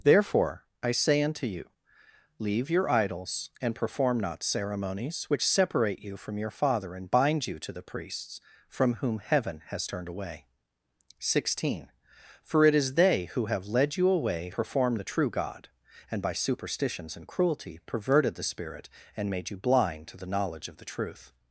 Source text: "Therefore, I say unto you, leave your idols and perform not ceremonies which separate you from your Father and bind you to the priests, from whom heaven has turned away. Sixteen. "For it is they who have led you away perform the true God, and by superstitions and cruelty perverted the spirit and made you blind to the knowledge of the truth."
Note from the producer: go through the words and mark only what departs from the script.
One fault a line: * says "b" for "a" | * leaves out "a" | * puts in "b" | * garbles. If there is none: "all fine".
all fine